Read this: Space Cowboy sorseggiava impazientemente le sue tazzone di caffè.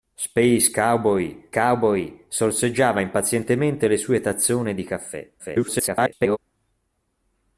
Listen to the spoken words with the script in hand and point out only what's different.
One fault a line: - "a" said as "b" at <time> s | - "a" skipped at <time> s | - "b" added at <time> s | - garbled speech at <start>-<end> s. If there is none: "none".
- "Cowboy" added at 1.5 s
- garbled speech at 5.4-6.4 s